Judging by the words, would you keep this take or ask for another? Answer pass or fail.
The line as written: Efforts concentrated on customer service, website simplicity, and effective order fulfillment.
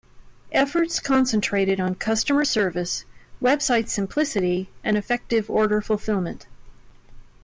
pass